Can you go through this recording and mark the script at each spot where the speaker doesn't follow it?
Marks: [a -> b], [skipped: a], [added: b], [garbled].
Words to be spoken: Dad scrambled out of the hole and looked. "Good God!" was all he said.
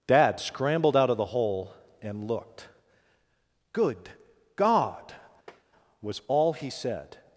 Dad scrambled out of the hole and looked. "Good God!" was all he said.